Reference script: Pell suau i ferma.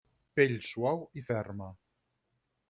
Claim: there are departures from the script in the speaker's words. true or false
false